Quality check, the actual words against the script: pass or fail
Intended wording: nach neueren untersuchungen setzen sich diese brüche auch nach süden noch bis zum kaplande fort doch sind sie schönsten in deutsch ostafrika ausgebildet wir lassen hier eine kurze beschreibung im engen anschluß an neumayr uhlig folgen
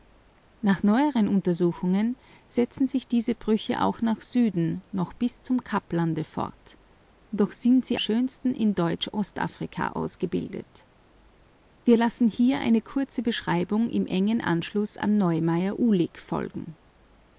pass